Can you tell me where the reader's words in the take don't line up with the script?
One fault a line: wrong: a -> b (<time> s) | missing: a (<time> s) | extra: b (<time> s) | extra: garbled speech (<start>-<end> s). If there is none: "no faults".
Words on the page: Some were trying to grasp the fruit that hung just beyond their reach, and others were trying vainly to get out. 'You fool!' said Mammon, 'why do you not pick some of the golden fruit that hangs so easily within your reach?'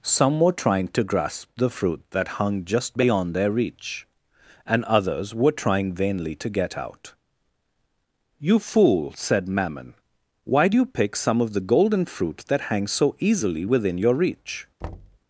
missing: not (10.8 s)